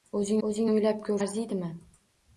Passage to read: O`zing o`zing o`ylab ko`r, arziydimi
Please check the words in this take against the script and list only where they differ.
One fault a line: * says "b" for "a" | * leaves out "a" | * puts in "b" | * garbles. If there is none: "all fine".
all fine